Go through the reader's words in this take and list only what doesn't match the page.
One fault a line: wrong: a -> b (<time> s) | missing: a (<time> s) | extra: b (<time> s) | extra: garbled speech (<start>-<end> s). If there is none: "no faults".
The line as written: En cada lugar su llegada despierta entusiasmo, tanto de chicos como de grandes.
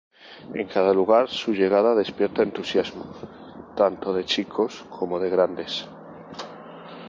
no faults